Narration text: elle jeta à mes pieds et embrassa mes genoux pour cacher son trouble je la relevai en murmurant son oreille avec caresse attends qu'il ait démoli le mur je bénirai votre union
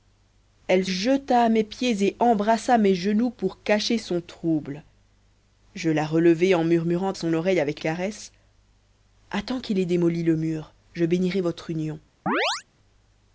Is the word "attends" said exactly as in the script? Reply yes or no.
yes